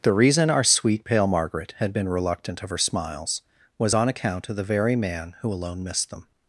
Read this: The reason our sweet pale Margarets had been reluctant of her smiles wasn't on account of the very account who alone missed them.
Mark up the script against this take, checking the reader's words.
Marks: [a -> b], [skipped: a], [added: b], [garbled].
The reason our sweet pale [Margarets -> Margaret] had been reluctant of her smiles [wasn't -> was] on account of the very [account -> man] who alone missed them.